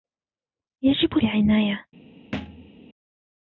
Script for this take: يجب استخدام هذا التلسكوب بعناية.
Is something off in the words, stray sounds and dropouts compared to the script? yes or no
yes